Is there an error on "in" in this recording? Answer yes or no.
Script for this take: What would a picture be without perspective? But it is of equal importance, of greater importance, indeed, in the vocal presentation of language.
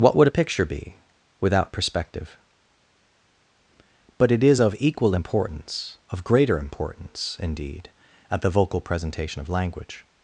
yes